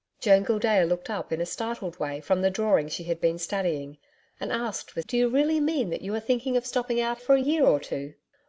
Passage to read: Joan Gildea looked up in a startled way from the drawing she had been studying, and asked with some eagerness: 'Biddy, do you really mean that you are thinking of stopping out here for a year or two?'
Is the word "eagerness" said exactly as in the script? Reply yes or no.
no